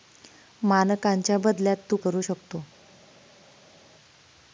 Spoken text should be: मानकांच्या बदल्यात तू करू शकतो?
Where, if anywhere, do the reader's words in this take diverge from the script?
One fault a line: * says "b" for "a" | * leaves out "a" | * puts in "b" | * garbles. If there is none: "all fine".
all fine